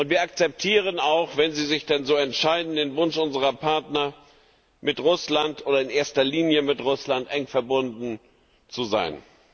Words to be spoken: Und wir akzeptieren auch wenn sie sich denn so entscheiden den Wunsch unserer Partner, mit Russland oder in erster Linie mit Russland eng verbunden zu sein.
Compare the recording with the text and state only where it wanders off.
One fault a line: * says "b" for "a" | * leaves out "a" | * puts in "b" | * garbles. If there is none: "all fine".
all fine